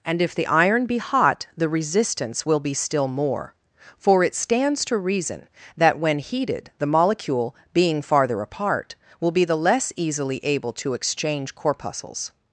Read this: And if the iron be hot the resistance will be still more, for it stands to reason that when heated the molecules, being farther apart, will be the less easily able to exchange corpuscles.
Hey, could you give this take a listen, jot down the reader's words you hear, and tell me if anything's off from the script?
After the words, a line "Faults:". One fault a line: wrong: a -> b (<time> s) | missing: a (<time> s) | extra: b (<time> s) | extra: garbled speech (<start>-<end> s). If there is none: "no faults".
And if the iron be hot the resistance will be still more, for it stands to reason that when heated the molecule, being farther apart, will be the less easily able to exchange corpuscles.
Faults:
wrong: molecules -> molecule (6.8 s)